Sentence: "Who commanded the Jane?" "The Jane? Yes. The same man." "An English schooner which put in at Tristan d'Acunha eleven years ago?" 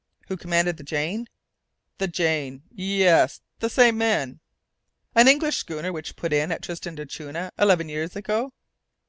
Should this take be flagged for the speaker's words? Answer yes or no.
no